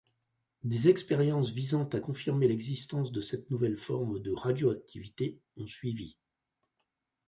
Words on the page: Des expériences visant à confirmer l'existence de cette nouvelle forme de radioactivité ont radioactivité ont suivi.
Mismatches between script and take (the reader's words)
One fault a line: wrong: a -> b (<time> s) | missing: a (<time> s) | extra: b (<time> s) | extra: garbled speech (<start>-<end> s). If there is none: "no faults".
missing: radioactivité ont (5.7 s)